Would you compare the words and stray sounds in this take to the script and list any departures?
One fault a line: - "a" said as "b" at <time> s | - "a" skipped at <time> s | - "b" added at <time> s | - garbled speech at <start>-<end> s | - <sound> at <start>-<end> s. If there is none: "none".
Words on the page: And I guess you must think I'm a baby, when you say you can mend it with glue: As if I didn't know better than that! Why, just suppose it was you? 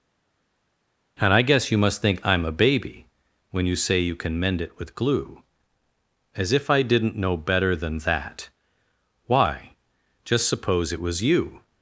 none